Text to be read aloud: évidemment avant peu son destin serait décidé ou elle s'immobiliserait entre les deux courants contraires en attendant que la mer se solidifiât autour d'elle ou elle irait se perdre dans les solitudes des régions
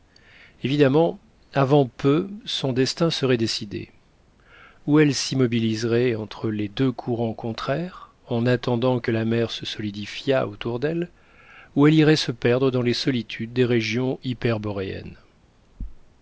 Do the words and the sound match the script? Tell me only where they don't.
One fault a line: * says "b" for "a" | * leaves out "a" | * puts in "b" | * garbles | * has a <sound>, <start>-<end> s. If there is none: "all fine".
all fine